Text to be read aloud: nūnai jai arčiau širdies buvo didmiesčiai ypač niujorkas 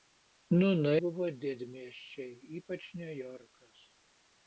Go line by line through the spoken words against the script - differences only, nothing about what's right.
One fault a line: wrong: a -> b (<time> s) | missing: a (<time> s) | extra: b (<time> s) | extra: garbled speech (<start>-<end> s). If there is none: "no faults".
missing: jai arčiau širdies (1.0 s)